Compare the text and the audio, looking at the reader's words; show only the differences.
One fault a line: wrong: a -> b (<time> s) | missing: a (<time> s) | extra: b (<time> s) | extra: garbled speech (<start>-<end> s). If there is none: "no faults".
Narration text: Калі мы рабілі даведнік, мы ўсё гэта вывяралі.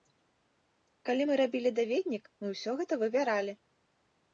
no faults